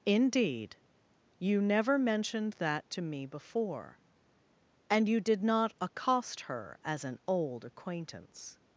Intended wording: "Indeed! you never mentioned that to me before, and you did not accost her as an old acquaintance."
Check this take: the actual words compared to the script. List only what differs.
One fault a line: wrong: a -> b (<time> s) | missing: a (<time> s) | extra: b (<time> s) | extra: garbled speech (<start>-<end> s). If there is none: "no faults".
no faults